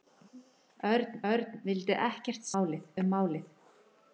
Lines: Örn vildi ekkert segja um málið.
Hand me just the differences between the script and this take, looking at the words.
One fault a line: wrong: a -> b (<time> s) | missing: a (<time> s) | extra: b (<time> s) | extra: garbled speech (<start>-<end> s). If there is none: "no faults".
extra: örn (1.3 s)
wrong: segja -> málið (2.6 s)